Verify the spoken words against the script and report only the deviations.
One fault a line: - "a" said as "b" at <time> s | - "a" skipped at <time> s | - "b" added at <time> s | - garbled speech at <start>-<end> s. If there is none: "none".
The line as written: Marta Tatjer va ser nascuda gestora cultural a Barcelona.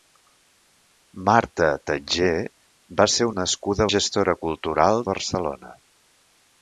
none